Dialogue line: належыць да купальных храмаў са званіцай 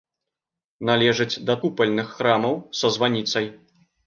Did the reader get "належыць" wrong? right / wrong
right